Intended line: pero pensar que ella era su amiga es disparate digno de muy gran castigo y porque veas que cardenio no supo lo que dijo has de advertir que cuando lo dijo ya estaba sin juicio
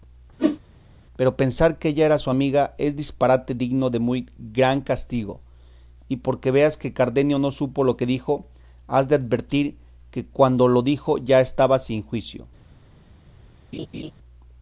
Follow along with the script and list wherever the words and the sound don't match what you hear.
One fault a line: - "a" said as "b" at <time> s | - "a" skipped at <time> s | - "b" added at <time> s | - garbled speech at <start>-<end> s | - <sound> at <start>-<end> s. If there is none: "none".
- whoosh at 0.4-0.6 s
- laugh at 13.7-14.1 s